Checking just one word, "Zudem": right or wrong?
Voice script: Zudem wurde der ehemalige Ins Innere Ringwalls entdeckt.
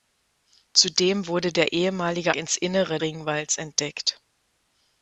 right